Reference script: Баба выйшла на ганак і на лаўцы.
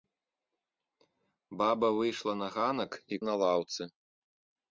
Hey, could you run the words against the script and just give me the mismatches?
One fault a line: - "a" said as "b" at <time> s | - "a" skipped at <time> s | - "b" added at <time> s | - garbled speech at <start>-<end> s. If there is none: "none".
none